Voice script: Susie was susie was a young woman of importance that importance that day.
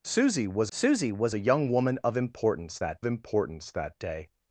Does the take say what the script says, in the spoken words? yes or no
yes